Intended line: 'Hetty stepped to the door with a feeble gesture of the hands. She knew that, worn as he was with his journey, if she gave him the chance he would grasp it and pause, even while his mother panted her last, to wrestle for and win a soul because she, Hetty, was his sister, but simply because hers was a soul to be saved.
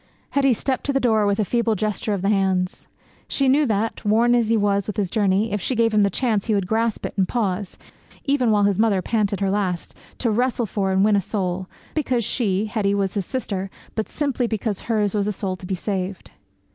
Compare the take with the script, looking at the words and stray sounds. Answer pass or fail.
pass